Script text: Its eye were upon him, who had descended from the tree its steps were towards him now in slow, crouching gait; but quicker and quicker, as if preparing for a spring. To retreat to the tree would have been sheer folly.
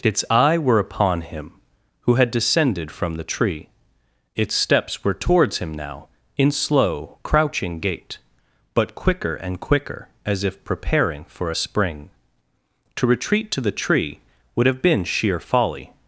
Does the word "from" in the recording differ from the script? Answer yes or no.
no